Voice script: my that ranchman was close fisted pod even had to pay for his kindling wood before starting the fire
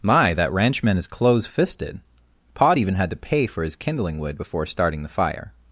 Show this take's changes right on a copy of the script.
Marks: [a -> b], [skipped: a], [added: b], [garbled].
my that ranchman [was -> is] close fisted pod even had to pay for his kindling wood before starting the fire